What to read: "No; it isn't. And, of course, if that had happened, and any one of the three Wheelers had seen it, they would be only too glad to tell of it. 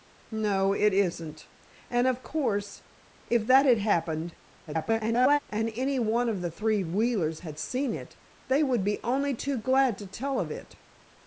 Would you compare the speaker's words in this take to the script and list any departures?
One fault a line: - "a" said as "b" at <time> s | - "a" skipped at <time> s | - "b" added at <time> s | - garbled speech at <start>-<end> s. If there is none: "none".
- garbled speech at 4.7-5.4 s